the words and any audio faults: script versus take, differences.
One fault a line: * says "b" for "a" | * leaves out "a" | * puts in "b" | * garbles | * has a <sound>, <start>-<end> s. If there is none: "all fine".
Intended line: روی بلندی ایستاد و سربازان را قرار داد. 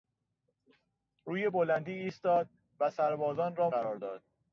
all fine